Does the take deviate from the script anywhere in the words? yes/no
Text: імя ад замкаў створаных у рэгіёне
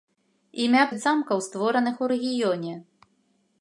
no